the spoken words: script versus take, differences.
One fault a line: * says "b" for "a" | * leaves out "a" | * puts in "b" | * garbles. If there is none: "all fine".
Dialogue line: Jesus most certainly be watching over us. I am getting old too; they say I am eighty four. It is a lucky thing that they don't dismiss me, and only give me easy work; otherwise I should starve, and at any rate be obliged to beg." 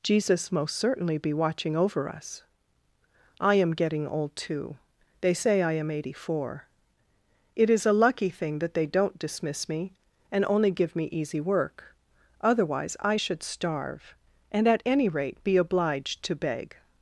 all fine